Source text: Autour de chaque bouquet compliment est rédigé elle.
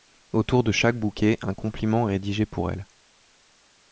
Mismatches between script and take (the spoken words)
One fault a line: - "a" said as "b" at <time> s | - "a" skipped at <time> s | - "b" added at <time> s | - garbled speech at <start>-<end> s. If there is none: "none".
- "un" added at 1.4 s
- "pour" added at 2.4 s